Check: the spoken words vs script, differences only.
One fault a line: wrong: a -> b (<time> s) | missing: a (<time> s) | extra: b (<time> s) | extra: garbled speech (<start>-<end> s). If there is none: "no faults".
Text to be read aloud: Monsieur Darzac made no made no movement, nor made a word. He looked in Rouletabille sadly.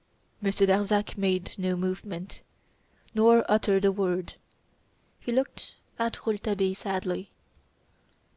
missing: made no (1.8 s)
wrong: made -> uttered (3.5 s)
wrong: in -> at (6.0 s)